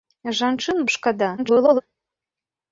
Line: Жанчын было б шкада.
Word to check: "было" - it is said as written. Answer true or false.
false